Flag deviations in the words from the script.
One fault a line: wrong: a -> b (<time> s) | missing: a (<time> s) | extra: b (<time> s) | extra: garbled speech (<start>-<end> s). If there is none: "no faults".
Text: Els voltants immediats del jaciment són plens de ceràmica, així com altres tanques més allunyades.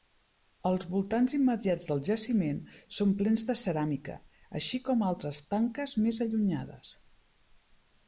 no faults